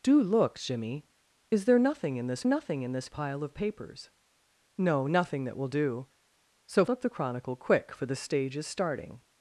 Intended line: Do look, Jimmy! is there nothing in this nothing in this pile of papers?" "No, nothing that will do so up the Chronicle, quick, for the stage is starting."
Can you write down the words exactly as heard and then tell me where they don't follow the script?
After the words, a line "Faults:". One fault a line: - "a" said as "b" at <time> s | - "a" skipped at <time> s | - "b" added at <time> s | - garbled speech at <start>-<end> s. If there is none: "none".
Do look, Jimmy! is there nothing in this nothing in this pile of papers?" "No, nothing that will do so up the Chronicle, quick, for the stage is starting."
Faults:
none